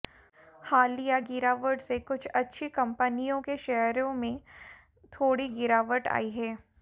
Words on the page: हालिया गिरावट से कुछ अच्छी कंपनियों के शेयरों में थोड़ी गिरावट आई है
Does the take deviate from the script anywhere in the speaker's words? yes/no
no